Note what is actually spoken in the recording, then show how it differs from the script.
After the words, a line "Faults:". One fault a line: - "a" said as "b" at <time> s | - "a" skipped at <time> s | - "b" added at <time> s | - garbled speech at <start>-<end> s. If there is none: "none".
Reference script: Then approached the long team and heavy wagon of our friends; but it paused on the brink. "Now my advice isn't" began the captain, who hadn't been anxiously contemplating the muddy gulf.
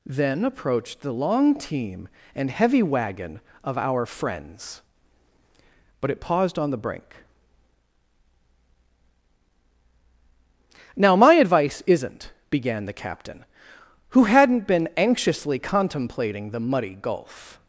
Then approached the long team and heavy wagon of our friends; but it paused on the brink. "Now my advice isn't" began the captain, who hadn't been anxiously contemplating the muddy gulf.
Faults:
none